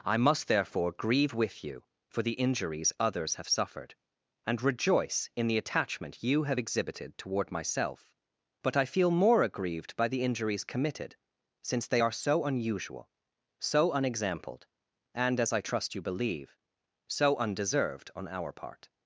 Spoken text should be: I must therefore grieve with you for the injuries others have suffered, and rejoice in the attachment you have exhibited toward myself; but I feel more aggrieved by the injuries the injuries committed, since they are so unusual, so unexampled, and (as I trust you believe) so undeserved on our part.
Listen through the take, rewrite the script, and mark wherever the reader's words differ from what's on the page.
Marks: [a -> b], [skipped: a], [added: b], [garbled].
I must therefore grieve with you for the injuries others have suffered, and rejoice in the attachment you have exhibited toward myself; but I feel more aggrieved by the injuries [skipped: the injuries] committed, since they are so unusual, so unexampled, and (as I trust you believe) so undeserved on our part.